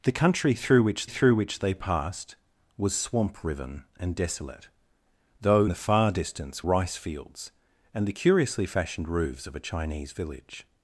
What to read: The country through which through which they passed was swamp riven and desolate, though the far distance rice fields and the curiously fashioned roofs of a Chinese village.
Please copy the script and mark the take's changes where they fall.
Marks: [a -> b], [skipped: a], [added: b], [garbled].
The country through which through which they passed was swamp riven and desolate, though the far distance rice fields and the curiously fashioned roofs of a Chinese village.